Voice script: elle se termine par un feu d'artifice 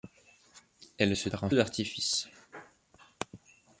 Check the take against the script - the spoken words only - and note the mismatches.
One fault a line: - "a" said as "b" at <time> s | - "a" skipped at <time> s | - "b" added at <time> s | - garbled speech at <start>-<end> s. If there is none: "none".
- "termine" skipped at 1.3 s
- "feu" skipped at 1.5 s